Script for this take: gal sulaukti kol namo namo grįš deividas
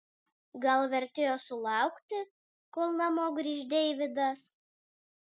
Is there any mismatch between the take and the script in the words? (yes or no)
yes